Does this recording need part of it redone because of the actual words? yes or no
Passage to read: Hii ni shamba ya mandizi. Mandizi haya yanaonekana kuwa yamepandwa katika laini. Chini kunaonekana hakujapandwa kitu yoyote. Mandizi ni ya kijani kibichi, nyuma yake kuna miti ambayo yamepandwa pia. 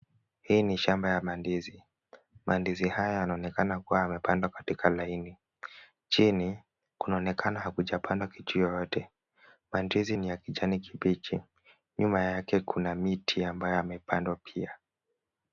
no